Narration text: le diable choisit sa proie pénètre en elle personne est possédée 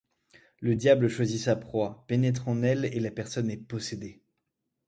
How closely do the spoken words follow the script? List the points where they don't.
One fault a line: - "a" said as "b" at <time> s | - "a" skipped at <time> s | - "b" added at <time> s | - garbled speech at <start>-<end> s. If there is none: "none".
- "et la" added at 2.9 s